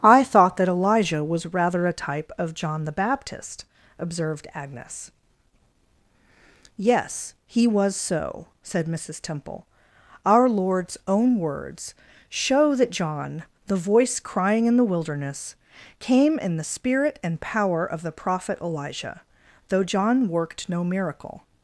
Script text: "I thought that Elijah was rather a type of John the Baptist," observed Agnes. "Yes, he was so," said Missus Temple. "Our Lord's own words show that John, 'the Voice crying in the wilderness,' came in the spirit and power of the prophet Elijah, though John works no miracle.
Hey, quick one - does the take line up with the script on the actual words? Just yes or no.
no